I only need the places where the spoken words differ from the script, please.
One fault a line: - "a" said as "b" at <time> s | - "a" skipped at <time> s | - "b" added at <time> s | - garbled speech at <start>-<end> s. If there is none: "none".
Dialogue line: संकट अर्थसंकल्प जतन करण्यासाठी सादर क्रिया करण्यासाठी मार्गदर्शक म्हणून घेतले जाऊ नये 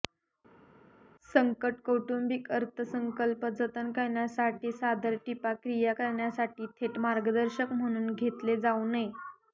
- "कौटुंबिक" added at 1.8 s
- "टिपा" added at 5.2 s
- "थेट" added at 6.8 s